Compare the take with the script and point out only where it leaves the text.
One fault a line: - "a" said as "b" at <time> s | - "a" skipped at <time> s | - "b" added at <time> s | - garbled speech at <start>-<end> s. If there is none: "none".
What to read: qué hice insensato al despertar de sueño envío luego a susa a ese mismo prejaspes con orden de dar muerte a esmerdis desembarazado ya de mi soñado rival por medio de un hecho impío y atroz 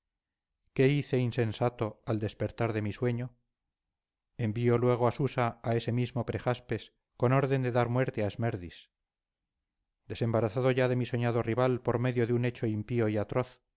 - "mi" added at 2.8 s